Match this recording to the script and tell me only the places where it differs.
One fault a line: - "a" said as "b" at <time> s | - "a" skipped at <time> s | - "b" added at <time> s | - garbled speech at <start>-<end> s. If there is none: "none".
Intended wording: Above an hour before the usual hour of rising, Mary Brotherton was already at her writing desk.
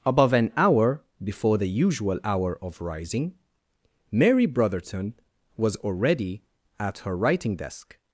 none